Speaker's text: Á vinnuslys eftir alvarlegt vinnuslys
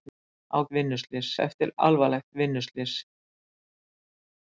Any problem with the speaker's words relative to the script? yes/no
no